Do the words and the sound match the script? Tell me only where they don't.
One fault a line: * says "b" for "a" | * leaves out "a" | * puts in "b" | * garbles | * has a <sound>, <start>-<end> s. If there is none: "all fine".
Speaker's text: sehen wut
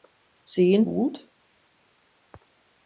all fine